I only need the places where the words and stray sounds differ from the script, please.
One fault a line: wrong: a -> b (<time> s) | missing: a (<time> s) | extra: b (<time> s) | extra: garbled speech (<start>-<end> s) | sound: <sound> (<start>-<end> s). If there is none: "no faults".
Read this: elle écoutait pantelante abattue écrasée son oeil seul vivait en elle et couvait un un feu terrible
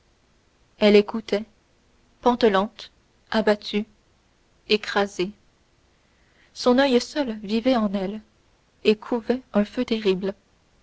missing: un (9.6 s)